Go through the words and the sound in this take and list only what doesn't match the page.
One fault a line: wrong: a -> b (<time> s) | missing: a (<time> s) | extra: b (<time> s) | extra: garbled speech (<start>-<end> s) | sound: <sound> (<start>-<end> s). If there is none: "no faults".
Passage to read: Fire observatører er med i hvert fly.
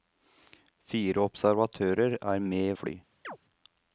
missing: hvert (2.8 s)
sound: chirp (3.2-3.4 s)